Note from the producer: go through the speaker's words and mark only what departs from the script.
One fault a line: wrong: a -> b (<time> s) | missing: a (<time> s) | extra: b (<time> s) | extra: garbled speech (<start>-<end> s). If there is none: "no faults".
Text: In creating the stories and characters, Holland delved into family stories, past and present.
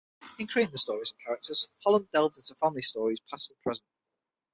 no faults